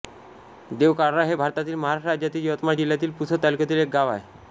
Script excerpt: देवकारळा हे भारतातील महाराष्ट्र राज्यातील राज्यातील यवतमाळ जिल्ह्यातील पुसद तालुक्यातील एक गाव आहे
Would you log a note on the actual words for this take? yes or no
yes